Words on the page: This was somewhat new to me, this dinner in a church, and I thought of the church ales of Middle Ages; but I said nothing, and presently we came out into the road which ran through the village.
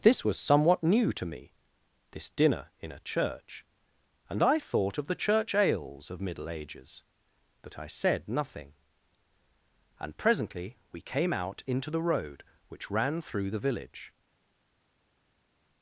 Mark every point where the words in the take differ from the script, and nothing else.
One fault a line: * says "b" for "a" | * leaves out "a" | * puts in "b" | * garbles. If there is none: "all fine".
all fine